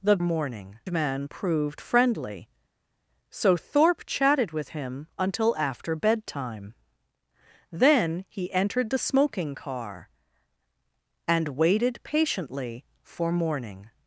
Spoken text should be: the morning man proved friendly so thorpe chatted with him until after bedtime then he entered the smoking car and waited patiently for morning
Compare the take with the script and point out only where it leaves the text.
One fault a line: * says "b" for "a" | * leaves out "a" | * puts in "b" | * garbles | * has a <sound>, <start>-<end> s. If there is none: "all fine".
all fine